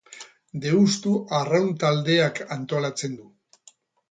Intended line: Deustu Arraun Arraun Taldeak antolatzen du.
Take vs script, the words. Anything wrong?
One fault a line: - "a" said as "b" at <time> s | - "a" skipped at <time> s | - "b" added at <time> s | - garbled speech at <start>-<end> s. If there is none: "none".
- "Arraun" skipped at 1.7 s